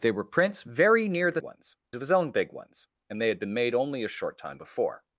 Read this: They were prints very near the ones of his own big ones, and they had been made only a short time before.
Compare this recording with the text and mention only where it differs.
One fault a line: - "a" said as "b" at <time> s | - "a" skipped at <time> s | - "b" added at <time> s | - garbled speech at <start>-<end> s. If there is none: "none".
none